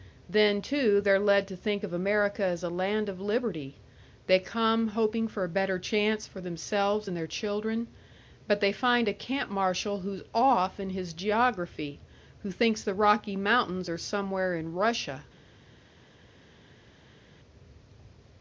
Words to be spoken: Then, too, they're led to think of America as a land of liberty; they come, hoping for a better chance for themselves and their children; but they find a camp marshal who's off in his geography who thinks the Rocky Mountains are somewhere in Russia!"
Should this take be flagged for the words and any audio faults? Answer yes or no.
no